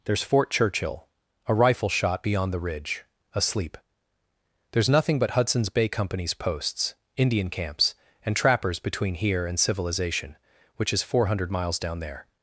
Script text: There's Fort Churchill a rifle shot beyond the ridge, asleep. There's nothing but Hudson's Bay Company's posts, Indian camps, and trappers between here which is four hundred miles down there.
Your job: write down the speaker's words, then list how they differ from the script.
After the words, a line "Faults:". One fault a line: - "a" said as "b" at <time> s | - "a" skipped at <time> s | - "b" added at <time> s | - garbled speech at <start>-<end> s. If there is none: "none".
There's Fort Churchill a rifle shot beyond the ridge, asleep. There's nothing but Hudson's Bay Company's posts, Indian camps, and trappers between here and civilization, which is four hundred miles down there.
Faults:
- "and civilization" added at 9.5 s